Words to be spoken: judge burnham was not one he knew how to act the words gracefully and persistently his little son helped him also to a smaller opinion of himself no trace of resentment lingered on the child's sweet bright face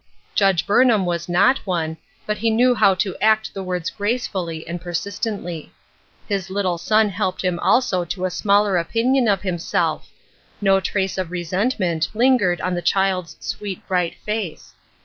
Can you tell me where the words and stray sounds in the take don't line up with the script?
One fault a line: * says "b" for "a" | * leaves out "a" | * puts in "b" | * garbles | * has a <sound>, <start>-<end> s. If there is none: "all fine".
* puts in "but"